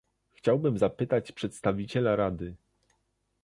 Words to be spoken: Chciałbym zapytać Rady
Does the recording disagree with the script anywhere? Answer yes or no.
yes